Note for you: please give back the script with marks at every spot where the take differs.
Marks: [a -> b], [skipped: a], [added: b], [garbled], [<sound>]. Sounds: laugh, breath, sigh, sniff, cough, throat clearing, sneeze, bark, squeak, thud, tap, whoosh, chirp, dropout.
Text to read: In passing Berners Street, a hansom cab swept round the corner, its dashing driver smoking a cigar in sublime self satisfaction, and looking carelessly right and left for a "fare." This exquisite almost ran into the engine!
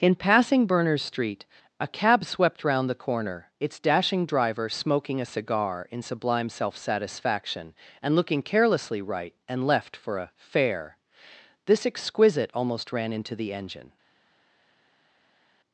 In passing Berners Street, a [skipped: hansom] cab swept round the corner, its dashing driver smoking a cigar in sublime self satisfaction, and looking carelessly right and left for a "fare." This exquisite almost ran into the engine!